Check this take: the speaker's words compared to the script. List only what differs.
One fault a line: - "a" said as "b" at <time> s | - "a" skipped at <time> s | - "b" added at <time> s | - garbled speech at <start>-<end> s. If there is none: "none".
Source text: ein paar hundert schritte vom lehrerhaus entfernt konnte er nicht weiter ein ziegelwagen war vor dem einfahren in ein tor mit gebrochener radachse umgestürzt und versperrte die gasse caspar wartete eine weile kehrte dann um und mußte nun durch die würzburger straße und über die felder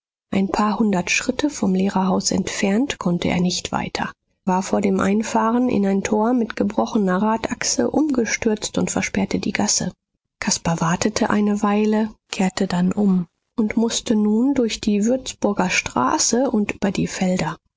- "ein ziegelwagen" skipped at 4.1 s